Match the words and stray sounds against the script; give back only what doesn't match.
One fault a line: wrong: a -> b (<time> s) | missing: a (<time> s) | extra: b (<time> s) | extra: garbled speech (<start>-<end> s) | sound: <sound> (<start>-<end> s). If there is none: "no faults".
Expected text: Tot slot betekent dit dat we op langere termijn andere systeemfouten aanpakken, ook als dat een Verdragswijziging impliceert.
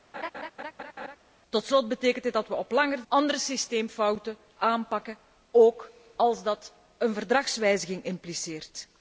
sound: laugh (0.1-1.2 s)
missing: termijn (3.0 s)